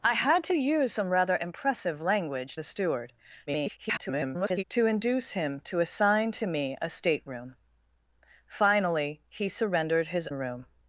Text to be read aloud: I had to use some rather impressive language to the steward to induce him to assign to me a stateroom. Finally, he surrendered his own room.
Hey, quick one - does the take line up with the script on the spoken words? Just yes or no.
no